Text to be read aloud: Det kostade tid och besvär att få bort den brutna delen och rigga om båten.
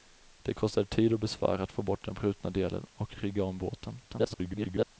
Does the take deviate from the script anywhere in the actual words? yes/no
yes